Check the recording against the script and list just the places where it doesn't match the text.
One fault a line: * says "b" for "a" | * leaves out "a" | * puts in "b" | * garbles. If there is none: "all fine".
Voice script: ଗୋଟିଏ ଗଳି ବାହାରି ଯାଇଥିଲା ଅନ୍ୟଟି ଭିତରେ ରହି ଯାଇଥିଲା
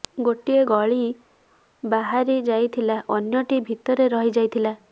all fine